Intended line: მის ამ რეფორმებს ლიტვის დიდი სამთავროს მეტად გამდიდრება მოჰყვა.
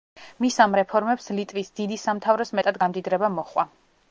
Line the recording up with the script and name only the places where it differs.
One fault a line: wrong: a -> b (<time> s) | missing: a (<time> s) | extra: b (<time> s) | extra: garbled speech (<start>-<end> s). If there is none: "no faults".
no faults